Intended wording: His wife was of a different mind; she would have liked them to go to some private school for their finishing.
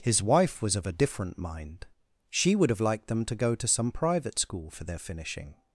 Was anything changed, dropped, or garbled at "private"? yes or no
no